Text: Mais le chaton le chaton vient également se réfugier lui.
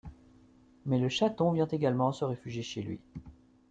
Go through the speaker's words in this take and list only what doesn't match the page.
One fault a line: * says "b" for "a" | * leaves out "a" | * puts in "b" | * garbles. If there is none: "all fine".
* leaves out "le chaton"
* puts in "chez"